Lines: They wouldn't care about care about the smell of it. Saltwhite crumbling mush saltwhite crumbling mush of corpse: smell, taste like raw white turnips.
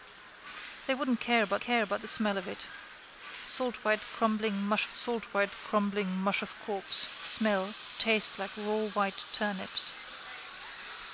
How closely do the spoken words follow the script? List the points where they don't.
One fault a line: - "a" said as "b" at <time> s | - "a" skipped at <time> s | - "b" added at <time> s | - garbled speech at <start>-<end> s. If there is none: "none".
none